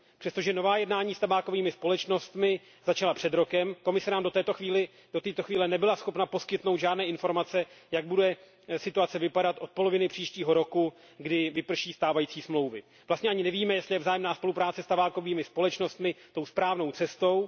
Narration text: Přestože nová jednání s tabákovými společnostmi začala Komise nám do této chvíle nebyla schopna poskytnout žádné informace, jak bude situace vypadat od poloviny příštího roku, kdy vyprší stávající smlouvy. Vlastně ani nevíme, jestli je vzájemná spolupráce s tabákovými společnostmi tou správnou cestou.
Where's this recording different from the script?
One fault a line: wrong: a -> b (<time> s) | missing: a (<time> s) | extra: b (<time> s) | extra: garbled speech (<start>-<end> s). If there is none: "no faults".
extra: před rokem (3.1 s)